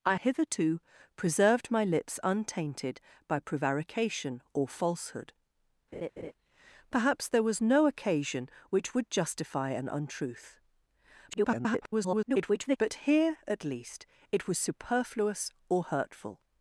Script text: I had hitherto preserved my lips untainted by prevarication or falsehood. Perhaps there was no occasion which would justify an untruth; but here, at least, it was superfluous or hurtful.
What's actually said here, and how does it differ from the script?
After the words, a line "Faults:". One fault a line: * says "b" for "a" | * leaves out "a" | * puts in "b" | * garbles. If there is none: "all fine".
I hitherto preserved my lips untainted by prevarication or falsehood. Perhaps there was no occasion which would justify an untruth; [garbled] but here, at least, it was superfluous or hurtful.
Faults:
* leaves out "had"
* garbles